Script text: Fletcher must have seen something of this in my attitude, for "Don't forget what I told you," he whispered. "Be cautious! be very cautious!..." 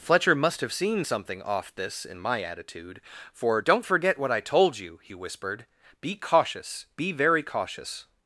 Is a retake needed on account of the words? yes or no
yes